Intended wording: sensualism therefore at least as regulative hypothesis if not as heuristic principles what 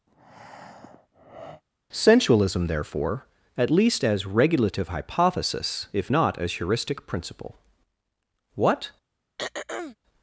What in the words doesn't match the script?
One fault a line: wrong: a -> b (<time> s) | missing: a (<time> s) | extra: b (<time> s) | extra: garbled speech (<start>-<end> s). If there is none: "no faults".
wrong: principles -> principle (7.1 s)